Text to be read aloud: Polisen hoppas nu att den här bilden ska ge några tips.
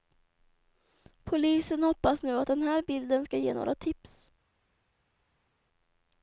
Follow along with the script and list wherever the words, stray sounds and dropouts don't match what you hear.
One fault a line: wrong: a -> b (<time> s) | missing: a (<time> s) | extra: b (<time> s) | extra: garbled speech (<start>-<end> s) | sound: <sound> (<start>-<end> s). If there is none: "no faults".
no faults